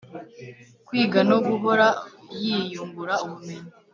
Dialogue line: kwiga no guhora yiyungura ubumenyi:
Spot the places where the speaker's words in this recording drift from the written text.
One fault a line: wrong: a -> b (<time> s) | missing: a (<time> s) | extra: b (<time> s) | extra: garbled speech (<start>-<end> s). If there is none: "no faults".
no faults